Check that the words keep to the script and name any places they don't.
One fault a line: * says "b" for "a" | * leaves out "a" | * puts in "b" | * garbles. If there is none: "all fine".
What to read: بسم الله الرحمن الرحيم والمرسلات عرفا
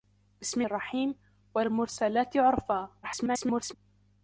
* leaves out "الله الرحمن"
* garbles